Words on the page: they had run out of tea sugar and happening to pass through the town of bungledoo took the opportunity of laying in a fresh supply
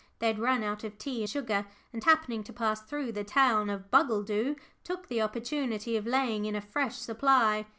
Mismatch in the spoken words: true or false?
false